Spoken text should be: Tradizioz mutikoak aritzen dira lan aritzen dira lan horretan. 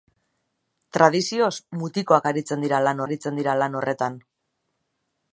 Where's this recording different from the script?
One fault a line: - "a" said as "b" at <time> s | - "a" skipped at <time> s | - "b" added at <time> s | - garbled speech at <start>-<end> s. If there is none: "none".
none